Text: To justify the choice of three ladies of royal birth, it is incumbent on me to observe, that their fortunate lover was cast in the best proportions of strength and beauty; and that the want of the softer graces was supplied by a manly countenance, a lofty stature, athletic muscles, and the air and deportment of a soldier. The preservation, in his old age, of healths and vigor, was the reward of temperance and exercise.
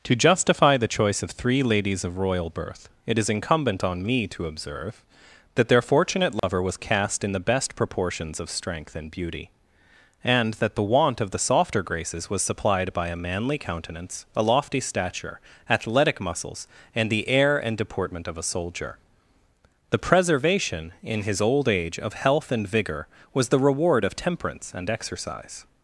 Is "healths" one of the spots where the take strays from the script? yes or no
yes